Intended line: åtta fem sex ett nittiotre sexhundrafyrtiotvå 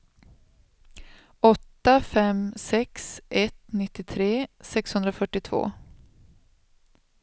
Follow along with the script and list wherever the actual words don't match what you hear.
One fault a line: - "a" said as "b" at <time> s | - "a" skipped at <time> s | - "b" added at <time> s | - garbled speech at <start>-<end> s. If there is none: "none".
none